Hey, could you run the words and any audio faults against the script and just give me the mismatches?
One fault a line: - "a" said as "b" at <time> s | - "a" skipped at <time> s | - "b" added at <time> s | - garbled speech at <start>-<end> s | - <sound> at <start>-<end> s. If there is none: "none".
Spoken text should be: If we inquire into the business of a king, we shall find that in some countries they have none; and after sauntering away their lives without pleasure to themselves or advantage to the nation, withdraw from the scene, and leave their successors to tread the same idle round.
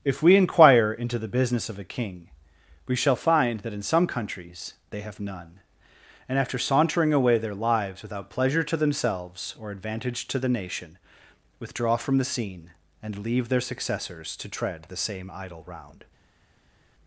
none